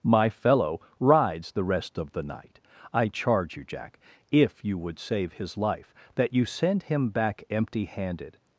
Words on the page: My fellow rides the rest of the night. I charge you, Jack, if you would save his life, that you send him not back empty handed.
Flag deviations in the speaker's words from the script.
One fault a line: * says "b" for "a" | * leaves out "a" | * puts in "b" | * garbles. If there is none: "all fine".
* leaves out "not"